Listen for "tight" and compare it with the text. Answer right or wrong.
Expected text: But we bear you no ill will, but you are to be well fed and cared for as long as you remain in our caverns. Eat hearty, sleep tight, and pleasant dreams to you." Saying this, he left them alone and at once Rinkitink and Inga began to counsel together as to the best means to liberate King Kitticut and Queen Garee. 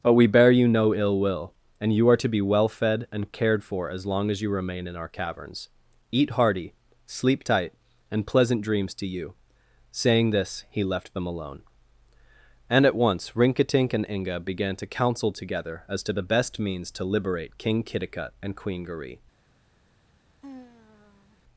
right